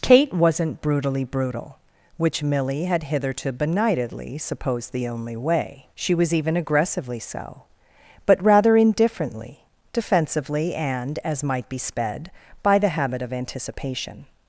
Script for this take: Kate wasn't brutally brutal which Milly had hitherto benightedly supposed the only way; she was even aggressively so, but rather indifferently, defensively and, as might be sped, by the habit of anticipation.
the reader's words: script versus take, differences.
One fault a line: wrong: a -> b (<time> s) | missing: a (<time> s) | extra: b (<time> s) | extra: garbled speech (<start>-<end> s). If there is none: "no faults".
no faults